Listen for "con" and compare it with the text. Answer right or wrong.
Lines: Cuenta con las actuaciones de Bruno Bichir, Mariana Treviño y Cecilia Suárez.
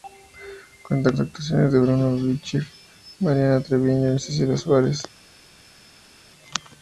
wrong